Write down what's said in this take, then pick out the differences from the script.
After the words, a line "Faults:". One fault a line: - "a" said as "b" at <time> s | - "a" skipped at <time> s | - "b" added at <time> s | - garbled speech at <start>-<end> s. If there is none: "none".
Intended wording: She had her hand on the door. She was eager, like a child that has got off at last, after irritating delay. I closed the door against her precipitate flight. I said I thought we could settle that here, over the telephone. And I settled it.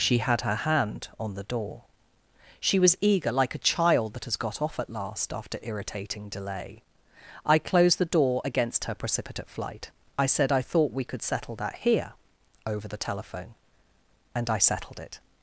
She had her hand on the door. She was eager, like a child that has got off at last, after irritating delay. I closed the door against her precipitate flight. I said I thought we could settle that here, over the telephone. And I settled it.
Faults:
none